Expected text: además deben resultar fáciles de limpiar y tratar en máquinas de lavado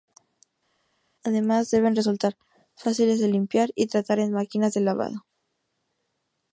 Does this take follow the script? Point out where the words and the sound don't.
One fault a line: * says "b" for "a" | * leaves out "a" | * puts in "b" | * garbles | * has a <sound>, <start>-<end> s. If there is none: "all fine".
all fine